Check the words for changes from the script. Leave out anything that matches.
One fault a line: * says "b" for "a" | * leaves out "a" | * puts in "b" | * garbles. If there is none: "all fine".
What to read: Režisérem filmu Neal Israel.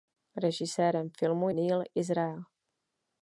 all fine